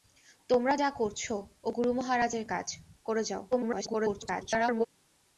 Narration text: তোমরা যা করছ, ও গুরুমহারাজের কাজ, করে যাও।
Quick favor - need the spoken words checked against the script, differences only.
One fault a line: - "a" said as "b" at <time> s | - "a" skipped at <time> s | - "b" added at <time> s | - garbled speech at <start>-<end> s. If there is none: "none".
- garbled speech at 3.5-4.9 s